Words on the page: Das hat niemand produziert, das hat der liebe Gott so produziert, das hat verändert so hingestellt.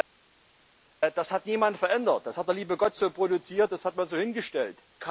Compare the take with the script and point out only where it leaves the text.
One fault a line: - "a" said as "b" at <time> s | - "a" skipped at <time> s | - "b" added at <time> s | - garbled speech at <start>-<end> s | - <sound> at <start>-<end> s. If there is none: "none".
- "produziert" said as "verändert" at 1.8 s
- "verändert" said as "man" at 3.9 s